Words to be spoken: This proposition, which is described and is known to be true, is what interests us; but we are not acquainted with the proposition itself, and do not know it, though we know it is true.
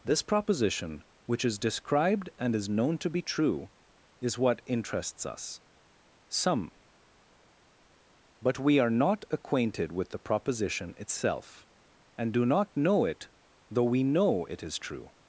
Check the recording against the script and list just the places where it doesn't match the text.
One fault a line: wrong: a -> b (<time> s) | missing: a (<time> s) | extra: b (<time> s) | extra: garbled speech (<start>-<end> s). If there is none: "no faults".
extra: some (6.3 s)